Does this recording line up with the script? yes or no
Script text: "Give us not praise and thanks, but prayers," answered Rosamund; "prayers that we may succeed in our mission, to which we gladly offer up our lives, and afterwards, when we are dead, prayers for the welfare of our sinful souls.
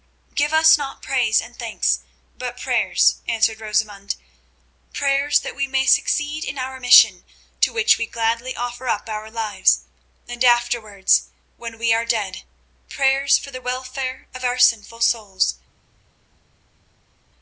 yes